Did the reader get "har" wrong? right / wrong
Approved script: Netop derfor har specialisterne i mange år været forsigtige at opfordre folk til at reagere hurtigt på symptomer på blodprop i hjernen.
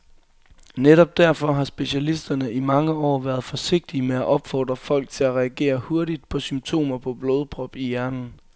right